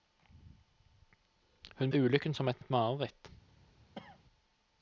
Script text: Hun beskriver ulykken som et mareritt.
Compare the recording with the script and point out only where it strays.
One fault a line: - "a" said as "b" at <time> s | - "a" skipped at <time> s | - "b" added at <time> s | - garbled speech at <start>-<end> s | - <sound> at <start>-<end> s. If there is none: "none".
- "beskriver" skipped at 1.9 s
- "et" added at 2.6 s
- cough at 3.9-4.2 s